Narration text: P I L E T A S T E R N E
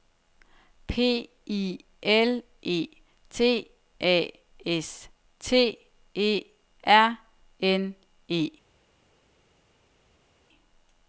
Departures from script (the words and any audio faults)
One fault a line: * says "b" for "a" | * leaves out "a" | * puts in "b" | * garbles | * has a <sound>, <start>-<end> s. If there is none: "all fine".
all fine